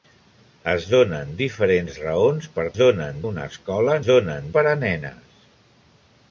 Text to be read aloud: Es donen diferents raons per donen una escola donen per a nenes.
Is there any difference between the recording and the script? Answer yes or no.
no